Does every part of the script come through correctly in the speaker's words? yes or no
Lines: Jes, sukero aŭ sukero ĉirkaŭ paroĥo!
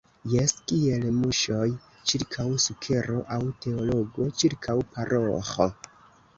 no